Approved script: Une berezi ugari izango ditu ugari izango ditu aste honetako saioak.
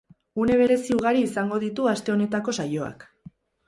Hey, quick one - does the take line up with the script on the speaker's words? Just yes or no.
no